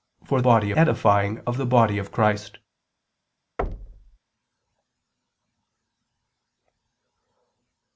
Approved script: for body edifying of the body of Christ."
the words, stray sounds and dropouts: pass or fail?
fail